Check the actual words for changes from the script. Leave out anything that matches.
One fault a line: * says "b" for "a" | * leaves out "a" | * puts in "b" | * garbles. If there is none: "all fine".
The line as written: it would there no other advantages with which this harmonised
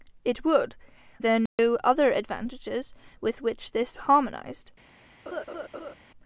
all fine